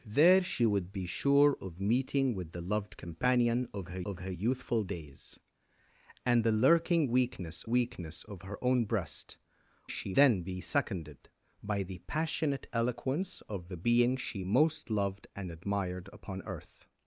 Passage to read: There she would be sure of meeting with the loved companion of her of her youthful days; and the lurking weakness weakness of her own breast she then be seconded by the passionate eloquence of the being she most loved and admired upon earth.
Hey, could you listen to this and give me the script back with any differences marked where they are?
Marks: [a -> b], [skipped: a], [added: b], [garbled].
There she would be sure of meeting with the loved companion of her of her youthful days; and the lurking weakness weakness of her own breast she then be seconded by the passionate eloquence of the being she most loved and admired upon earth.